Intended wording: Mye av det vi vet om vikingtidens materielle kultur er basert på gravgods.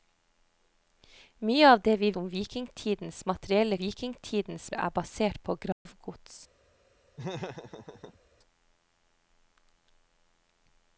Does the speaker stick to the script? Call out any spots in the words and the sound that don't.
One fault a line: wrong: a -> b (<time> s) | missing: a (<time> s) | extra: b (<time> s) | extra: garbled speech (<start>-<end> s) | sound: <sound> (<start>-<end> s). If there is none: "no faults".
missing: vet (2.1 s)
wrong: kultur -> vikingtidens (3.8 s)
sound: dropout (5.7-5.9 s)
sound: laugh (7.2-8.2 s)